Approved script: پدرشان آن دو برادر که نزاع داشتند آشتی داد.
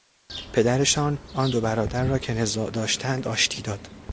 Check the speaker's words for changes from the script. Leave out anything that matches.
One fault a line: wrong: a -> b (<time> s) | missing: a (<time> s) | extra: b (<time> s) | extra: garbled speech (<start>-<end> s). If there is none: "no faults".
extra: را (2.0 s)